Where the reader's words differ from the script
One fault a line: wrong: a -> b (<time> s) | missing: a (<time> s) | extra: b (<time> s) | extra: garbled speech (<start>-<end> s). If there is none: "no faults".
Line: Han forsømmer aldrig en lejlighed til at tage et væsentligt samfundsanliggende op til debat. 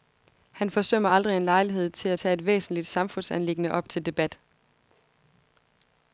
no faults